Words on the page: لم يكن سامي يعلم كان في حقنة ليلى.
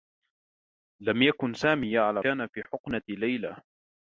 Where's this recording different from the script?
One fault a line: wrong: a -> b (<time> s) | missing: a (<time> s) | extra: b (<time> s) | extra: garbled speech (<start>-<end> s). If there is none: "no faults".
no faults